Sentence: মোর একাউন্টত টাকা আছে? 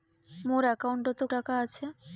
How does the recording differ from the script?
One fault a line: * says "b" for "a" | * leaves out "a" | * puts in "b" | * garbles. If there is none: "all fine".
all fine